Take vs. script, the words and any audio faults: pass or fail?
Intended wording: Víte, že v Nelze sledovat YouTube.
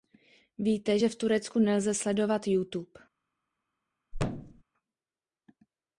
fail